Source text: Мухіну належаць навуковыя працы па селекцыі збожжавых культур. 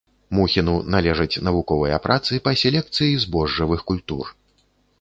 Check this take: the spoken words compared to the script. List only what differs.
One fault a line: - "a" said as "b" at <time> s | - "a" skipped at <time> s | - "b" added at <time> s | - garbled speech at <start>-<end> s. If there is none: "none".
none